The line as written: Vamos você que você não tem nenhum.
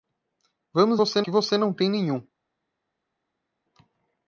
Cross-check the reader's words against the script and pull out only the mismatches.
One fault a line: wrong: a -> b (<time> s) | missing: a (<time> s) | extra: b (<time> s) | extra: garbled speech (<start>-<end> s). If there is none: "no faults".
no faults